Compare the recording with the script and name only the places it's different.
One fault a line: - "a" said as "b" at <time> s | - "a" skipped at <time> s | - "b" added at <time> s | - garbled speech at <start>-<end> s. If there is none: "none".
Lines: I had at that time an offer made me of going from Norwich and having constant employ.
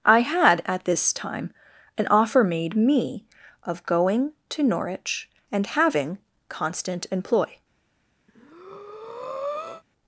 - "that" said as "this" at 0.8 s
- "from" said as "to" at 4.5 s